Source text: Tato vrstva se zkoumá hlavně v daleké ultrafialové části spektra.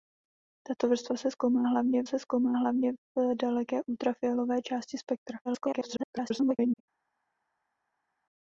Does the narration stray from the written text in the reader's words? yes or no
yes